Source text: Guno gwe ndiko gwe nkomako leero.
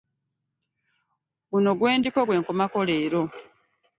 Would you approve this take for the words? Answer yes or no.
yes